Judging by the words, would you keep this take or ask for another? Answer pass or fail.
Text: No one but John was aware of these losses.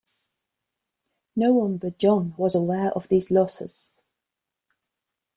pass